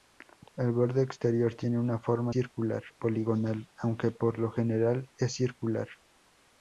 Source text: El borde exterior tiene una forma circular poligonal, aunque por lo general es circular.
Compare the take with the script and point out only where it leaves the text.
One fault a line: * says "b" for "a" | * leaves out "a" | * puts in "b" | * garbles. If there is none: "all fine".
all fine